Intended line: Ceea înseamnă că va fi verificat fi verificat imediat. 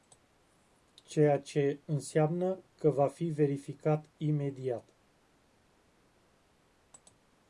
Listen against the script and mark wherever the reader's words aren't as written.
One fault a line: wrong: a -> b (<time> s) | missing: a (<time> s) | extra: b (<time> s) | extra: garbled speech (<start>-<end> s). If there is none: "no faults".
extra: ce (1.4 s)
missing: fi verificat (4.1 s)